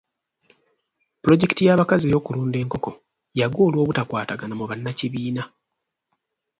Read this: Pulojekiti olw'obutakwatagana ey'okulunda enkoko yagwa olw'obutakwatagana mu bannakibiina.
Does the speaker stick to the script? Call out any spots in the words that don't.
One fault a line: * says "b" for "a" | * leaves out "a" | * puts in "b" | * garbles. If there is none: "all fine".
* says "y'abakazi" for "olw'obutakwatagana"